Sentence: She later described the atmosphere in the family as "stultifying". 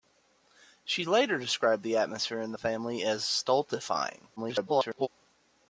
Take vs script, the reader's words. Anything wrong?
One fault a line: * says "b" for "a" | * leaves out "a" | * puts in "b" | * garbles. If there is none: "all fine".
* garbles